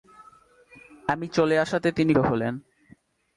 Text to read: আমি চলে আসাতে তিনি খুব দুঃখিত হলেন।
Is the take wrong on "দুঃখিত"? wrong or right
wrong